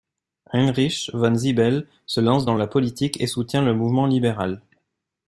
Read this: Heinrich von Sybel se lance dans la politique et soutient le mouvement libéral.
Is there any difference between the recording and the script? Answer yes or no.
no